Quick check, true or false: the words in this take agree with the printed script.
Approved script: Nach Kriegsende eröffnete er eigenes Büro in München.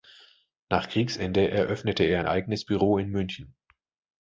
true